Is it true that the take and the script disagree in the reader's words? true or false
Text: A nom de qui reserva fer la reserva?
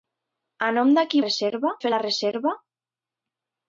false